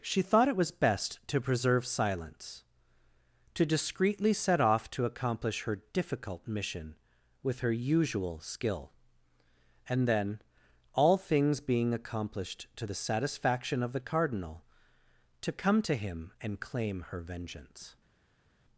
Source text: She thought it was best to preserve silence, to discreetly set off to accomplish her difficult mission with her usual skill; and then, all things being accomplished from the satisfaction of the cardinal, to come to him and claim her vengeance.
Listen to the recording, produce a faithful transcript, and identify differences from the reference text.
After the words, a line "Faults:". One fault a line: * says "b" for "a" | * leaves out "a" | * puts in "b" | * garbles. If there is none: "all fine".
She thought it was best to preserve silence, to discreetly set off to accomplish her difficult mission with her usual skill; and then, all things being accomplished to the satisfaction of the cardinal, to come to him and claim her vengeance.
Faults:
* says "to" for "from"